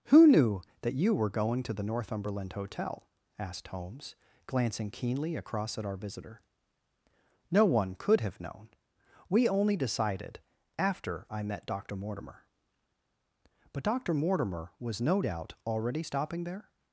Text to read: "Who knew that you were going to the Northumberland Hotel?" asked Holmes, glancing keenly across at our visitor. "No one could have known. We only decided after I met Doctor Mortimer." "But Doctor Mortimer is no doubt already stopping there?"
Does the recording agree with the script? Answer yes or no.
no